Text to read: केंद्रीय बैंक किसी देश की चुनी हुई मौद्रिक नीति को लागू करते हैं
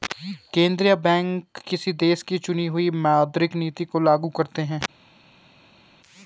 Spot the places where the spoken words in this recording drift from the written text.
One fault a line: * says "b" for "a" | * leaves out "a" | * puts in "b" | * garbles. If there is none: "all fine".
all fine